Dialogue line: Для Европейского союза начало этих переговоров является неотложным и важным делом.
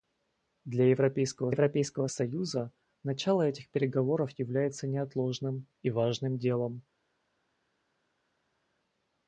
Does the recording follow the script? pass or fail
fail